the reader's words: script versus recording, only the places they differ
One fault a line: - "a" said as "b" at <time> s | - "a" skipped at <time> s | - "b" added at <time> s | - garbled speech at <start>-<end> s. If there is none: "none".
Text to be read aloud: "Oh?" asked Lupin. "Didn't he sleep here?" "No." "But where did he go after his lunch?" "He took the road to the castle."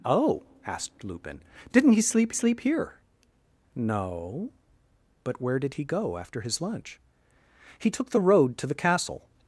- "sleep" added at 2.3 s